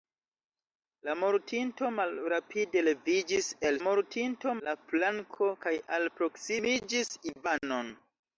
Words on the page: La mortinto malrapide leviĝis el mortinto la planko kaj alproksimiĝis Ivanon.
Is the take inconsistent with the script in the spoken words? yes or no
no